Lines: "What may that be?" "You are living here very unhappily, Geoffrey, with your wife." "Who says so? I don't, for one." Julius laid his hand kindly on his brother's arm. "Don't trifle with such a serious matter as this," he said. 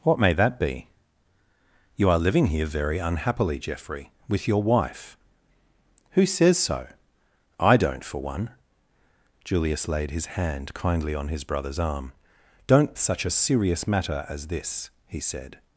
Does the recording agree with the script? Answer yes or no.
no